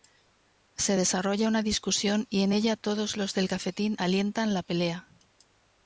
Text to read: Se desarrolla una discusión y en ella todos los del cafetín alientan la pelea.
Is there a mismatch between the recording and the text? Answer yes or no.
no